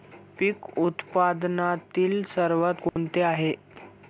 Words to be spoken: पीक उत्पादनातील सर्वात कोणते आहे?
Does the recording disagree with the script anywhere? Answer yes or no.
no